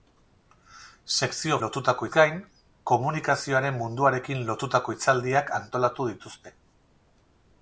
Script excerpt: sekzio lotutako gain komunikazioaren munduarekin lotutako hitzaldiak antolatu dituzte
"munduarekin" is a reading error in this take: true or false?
false